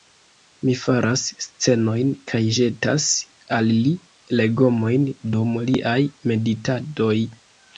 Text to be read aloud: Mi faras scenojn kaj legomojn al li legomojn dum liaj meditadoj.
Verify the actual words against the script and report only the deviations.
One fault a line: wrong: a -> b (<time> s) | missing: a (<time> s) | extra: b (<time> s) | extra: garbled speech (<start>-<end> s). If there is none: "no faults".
wrong: legomojn -> ĵetas (2.6 s)